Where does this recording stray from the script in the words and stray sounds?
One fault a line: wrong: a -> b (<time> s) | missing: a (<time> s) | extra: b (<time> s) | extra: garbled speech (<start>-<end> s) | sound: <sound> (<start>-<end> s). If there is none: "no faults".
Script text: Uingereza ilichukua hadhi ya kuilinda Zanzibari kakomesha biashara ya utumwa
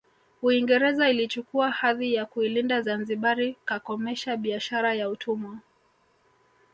no faults